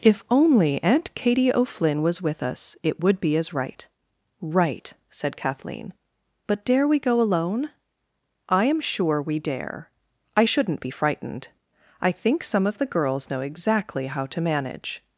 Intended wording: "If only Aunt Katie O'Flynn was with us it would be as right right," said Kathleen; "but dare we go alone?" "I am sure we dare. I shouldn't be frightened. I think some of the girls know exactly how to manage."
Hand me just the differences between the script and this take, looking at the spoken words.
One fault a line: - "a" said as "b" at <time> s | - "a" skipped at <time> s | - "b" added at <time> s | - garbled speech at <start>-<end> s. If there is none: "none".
none